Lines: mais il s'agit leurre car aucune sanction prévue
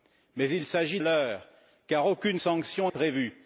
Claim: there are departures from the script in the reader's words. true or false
false